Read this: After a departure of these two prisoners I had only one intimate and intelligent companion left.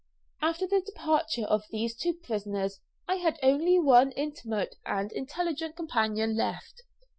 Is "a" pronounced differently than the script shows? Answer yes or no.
yes